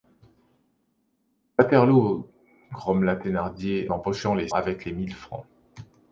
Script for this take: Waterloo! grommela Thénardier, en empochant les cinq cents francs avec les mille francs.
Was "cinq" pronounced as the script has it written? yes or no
no